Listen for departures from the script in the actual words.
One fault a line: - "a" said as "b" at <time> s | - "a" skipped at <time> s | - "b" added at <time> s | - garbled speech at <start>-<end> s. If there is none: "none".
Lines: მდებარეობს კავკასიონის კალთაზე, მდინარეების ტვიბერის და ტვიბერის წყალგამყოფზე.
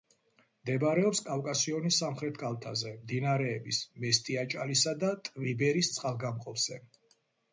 - "სამხრეთ" added at 2.0 s
- "ტვიბერის" said as "მესტიაჭალისა" at 4.1 s